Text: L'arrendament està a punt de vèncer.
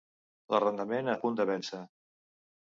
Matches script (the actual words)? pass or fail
fail